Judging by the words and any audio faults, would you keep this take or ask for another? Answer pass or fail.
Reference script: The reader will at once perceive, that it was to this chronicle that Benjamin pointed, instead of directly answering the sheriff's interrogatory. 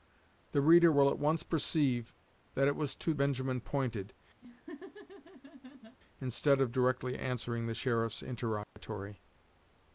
fail